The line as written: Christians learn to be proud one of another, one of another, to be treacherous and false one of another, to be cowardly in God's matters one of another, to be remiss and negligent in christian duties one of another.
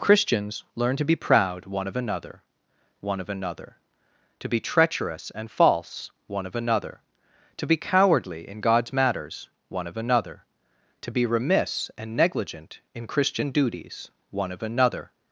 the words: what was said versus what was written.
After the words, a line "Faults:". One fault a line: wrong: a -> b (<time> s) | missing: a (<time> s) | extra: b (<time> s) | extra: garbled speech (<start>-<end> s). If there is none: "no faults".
Christians learn to be proud one of another, one of another, to be treacherous and false one of another, to be cowardly in God's matters one of another, to be remiss and negligent in christian duties one of another.
Faults:
no faults